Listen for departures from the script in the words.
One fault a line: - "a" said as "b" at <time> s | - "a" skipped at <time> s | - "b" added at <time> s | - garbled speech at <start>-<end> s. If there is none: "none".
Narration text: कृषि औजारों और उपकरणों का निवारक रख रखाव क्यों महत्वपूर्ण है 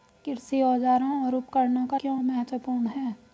- "निवारक रख रखाव" skipped at 2.0 s